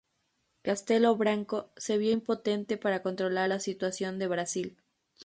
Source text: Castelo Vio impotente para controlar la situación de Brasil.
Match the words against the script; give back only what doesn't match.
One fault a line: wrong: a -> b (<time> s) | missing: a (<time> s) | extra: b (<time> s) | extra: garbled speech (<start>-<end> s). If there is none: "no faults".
extra: Branco se (1.1 s)